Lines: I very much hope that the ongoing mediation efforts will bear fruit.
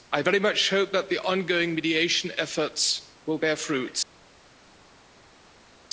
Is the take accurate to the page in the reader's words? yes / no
yes